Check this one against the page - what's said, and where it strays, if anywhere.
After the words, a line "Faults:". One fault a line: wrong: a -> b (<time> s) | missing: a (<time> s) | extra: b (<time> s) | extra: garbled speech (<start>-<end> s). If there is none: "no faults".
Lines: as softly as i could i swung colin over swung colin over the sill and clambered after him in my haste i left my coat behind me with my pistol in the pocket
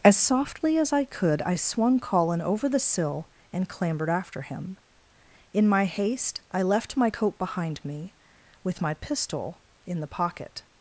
as softly as i could i swung colin over the sill and clambered after him in my haste i left my coat behind me with my pistol in the pocket
Faults:
missing: swung colin over (2.7 s)